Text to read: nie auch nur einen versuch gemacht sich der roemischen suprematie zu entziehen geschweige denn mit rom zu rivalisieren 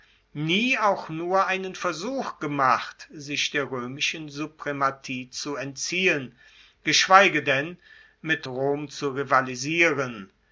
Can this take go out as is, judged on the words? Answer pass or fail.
pass